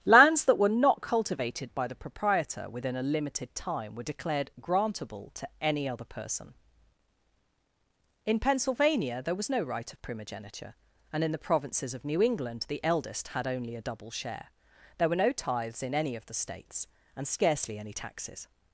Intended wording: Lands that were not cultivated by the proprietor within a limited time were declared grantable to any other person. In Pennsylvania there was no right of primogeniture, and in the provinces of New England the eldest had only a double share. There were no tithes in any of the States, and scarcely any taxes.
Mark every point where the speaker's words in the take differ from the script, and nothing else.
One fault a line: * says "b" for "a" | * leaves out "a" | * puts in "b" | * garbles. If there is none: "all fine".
all fine